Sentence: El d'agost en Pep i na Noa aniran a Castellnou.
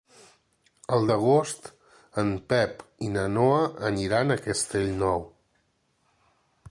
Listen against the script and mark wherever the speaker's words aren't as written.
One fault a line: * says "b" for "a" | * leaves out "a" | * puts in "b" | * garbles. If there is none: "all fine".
all fine